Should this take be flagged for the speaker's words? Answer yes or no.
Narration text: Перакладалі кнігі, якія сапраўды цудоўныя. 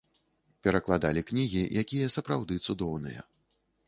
no